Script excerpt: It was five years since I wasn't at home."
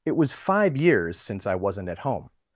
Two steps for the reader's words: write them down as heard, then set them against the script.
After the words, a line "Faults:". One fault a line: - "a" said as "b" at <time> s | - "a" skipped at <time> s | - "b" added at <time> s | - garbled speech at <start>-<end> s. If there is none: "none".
It was five years since I wasn't at home."
Faults:
none